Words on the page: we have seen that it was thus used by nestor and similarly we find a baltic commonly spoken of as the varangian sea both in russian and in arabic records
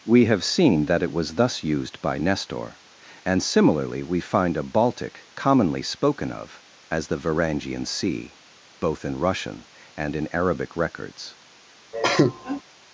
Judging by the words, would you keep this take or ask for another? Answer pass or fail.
pass